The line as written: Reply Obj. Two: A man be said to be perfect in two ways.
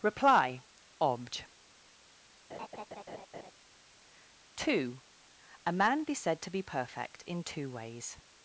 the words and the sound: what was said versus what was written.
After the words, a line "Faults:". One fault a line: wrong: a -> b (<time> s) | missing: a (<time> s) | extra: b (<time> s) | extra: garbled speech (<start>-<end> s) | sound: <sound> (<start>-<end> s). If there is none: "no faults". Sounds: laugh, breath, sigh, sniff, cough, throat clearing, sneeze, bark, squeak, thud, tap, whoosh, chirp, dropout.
Reply Obj. Two: A man be said to be perfect in two ways.
Faults:
sound: laugh (2.5-3.5 s)